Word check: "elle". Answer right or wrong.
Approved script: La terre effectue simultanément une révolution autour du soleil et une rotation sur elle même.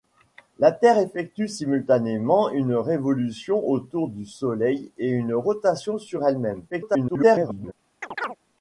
right